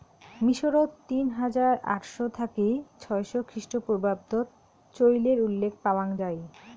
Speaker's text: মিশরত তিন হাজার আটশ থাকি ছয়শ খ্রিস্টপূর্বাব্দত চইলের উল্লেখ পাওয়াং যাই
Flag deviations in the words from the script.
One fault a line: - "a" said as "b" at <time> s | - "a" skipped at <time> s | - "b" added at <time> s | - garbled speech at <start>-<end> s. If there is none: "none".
none